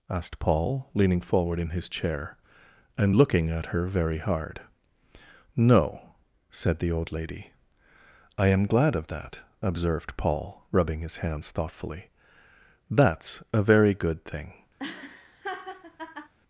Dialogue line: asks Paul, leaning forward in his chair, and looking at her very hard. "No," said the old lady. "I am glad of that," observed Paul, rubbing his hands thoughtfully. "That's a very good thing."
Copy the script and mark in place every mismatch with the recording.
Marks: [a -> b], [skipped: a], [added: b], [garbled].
[asks -> asked] Paul, leaning forward in his chair, and looking at her very hard. "No," said the old lady. "I am glad of that," observed Paul, rubbing his hands thoughtfully. "That's a very good thing."